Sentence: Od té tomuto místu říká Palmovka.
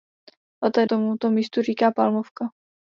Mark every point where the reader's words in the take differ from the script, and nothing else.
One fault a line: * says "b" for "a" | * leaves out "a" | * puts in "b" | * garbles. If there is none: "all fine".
all fine